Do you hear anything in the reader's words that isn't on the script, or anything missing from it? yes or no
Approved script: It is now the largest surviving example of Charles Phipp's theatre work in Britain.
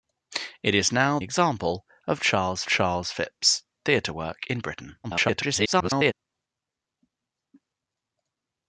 yes